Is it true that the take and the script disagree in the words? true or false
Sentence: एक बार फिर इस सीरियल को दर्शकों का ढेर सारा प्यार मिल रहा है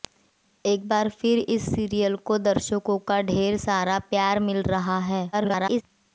true